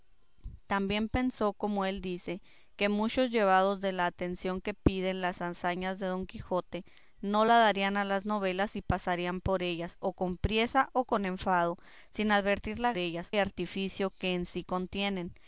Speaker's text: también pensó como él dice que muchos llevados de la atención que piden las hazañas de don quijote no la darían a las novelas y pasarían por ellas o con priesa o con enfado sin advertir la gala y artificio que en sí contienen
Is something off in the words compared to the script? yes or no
yes